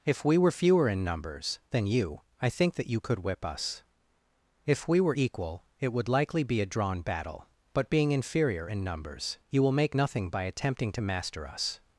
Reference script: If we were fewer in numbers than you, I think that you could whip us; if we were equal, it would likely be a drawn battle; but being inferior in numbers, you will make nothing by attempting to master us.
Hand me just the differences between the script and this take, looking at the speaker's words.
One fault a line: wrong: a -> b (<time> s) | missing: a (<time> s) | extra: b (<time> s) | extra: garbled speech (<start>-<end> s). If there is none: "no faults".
no faults